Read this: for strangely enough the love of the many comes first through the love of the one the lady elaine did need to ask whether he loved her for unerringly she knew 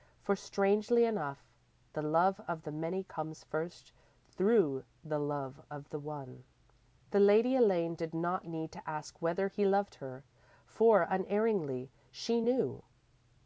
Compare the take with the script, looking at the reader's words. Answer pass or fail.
fail